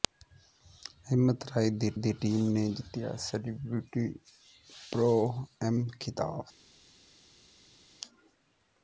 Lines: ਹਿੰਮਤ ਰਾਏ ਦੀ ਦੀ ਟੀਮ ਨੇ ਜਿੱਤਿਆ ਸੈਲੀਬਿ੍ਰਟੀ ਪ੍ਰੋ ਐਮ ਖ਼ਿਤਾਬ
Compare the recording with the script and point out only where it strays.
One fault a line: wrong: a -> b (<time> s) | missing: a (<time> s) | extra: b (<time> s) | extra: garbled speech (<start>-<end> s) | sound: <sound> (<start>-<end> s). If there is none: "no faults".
no faults